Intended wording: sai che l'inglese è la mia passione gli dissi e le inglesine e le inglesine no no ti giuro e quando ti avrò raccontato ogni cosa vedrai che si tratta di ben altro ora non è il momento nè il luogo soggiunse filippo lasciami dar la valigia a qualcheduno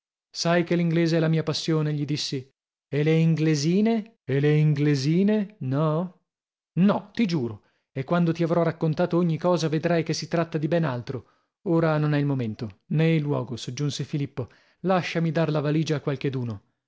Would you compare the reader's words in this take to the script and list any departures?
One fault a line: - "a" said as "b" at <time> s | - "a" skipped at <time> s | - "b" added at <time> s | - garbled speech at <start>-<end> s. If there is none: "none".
none